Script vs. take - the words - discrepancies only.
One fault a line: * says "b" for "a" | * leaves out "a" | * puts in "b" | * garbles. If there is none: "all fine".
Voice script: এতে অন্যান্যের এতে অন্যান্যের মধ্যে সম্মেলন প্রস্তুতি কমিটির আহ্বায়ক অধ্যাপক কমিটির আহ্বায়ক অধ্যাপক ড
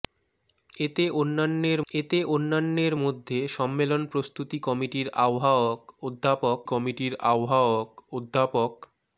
all fine